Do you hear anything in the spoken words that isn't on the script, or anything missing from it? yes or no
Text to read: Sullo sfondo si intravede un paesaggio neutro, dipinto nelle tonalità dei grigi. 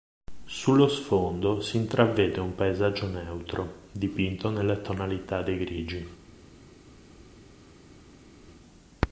no